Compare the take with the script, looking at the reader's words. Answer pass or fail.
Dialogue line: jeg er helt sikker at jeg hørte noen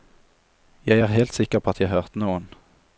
fail